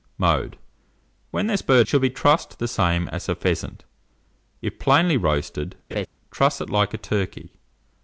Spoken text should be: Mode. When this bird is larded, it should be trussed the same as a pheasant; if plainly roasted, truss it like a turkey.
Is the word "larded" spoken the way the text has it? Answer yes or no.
no